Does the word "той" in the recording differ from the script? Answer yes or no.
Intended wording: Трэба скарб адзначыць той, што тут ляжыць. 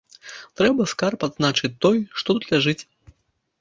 no